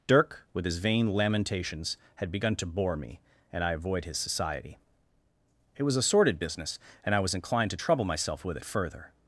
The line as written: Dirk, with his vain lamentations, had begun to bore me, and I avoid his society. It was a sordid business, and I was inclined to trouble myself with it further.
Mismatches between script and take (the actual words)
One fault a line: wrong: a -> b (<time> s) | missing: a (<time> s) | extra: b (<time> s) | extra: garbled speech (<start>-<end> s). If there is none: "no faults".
no faults